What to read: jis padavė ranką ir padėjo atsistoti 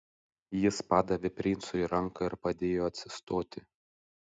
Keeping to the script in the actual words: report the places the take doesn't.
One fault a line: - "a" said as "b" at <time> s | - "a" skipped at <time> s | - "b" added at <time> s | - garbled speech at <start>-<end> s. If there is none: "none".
- "princui" added at 1.4 s